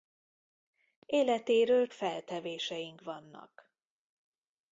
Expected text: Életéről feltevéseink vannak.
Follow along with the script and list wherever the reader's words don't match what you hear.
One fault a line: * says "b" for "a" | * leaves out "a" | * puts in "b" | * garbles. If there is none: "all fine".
all fine